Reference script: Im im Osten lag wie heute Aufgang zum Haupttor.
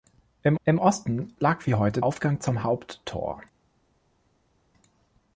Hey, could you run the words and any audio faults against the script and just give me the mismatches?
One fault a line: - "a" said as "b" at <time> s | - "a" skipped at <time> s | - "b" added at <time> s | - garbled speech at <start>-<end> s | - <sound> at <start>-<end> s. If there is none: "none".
none